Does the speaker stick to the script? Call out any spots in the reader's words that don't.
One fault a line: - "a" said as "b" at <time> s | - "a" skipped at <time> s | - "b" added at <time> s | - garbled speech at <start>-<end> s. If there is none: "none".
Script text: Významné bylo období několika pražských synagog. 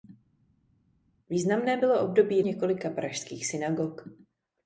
none